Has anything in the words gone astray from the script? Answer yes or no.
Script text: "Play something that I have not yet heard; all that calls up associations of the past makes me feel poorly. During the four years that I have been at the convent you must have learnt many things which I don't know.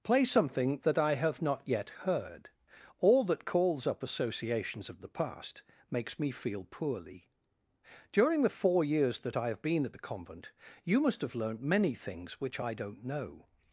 no